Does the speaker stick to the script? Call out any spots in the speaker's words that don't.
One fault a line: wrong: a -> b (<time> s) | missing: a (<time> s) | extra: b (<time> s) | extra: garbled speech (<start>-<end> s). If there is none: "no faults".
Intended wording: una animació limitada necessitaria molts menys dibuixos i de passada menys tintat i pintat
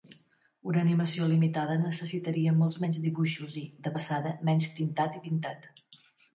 no faults